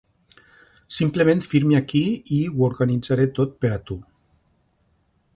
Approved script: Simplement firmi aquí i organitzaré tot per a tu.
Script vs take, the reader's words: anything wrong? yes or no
yes